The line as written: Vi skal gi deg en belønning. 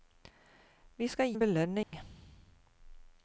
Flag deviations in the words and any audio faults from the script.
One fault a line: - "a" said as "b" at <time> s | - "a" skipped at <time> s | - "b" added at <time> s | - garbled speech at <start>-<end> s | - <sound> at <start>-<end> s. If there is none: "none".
- "gi deg" skipped at 1.3 s
- dropout at 1.8-1.9 s